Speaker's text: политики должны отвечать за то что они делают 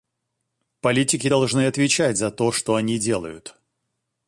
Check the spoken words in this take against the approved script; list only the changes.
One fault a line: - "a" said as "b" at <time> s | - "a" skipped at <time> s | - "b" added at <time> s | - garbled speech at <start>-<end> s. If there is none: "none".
none